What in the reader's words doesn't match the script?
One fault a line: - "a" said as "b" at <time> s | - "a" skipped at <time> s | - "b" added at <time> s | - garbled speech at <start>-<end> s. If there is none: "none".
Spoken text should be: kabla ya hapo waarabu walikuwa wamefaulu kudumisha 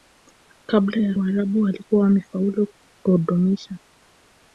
- "hapo" skipped at 1.1 s